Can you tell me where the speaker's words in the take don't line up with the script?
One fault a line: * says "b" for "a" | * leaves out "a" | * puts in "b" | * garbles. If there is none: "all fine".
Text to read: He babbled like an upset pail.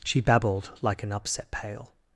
* says "She" for "He"